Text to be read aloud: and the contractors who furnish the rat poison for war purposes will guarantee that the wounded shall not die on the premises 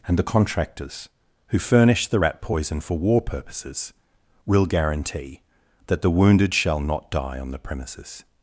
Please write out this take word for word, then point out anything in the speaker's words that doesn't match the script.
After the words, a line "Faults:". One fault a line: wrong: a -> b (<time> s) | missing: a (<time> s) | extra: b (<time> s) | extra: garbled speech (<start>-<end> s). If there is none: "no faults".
and the contractors who furnish the rat poison for war purposes will guarantee that the wounded shall not die on the premises
Faults:
no faults